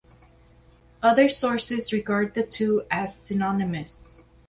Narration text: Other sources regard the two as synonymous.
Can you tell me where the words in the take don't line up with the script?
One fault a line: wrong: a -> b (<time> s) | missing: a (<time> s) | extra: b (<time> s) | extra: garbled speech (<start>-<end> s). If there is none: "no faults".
no faults